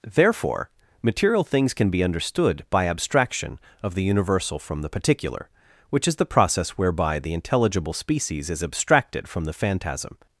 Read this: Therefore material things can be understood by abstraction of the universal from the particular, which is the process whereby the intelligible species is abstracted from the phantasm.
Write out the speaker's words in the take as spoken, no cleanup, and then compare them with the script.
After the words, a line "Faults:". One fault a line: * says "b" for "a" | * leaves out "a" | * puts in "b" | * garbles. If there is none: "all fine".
Therefore material things can be understood by abstraction of the universal from the particular, which is the process whereby the intelligible species is abstracted from the phantasm.
Faults:
all fine